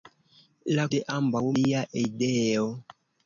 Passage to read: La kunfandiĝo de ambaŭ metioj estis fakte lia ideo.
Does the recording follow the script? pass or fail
fail